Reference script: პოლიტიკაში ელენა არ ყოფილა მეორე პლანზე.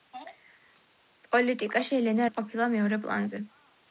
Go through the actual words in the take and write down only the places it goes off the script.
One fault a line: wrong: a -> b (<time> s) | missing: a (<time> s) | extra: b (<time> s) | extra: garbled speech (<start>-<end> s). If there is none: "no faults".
no faults